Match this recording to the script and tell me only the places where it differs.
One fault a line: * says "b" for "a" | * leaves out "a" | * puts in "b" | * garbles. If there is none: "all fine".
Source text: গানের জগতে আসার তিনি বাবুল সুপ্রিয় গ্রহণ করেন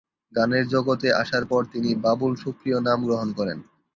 * puts in "পর"
* puts in "নাম"